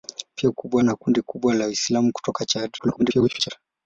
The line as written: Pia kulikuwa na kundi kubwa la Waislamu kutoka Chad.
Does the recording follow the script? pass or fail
fail